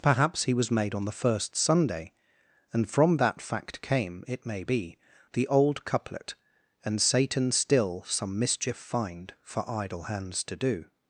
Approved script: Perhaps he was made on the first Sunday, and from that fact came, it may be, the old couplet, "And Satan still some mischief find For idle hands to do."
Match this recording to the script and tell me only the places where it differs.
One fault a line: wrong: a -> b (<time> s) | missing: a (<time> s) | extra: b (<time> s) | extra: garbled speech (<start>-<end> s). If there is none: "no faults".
no faults